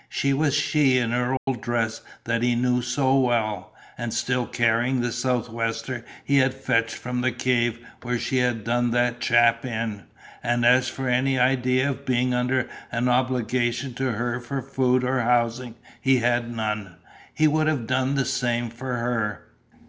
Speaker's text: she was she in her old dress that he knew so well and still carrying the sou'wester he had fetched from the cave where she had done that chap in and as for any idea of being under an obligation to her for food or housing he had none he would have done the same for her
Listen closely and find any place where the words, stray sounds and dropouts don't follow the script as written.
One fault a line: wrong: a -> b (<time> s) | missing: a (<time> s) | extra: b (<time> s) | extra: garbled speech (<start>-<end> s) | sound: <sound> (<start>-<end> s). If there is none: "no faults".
sound: dropout (1.4-1.5 s)